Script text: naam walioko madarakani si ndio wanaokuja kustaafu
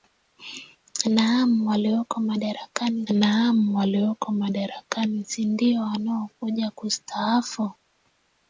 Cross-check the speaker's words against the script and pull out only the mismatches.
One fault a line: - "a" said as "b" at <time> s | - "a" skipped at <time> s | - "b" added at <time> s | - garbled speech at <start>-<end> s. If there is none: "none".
- "naam walioko madarakani" added at 3.1 s